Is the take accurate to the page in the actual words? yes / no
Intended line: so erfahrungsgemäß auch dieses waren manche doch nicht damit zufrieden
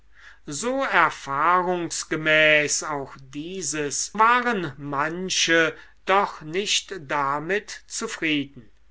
yes